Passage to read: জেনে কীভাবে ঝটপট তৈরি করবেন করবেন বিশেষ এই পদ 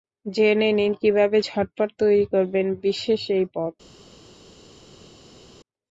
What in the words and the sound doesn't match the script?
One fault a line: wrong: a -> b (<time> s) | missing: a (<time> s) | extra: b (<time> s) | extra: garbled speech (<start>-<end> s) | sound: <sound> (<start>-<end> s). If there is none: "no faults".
extra: নিন (0.7 s)
missing: করবেন (2.7 s)